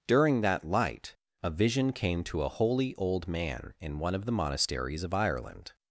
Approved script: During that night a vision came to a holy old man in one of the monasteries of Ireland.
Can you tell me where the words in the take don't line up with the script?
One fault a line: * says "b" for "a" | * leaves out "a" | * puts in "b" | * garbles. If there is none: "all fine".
* says "light" for "night"